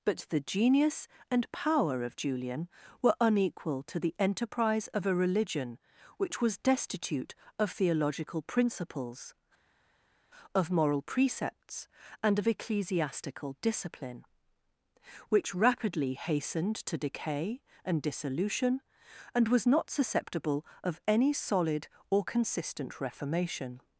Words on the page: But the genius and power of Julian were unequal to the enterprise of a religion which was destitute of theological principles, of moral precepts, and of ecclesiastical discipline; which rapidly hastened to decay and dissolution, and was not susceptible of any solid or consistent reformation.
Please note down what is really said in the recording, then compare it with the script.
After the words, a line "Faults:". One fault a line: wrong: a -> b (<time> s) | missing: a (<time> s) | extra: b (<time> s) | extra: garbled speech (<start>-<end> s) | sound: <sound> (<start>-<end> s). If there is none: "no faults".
But the genius and power of Julian were unequal to the enterprise of a religion which was destitute of theological principles, of moral precepts, and of ecclesiastical discipline; which rapidly hastened to decay and dissolution, and was not susceptible of any solid or consistent reformation.
Faults:
no faults